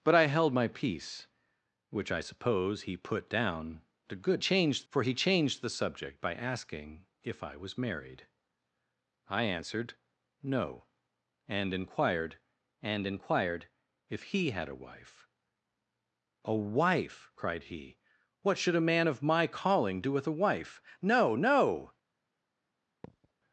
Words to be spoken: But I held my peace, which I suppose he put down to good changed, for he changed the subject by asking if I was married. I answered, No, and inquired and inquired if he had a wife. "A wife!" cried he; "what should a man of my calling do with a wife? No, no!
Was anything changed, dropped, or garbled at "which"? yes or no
no